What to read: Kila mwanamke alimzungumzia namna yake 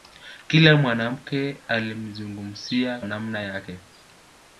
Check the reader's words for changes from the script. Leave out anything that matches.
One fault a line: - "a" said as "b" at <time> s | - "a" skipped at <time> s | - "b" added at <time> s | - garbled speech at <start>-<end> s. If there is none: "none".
none